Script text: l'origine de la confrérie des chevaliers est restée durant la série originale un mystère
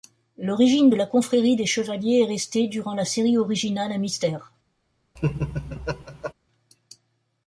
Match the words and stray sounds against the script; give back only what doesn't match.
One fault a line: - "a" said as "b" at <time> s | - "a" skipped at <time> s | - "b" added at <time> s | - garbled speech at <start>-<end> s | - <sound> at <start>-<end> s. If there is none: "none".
- laugh at 5.2-6.3 s